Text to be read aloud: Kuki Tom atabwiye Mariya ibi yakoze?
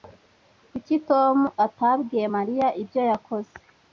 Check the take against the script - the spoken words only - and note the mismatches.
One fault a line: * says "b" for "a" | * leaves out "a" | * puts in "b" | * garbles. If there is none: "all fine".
* says "ibyo" for "ibi"